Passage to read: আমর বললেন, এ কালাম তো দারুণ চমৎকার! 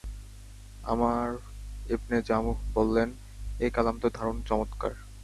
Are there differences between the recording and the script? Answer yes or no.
yes